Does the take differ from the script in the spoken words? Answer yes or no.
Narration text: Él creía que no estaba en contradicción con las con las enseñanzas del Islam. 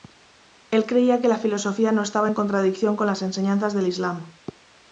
yes